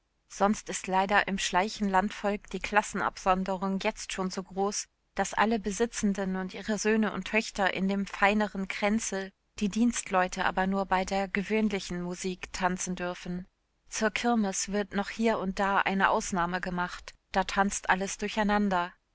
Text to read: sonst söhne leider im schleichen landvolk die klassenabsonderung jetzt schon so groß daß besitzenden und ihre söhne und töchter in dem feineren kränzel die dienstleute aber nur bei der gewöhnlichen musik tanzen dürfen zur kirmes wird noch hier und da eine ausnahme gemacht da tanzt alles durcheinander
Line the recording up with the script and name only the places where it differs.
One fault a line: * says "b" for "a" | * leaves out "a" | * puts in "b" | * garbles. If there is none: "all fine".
* says "ist" for "söhne"
* puts in "alle"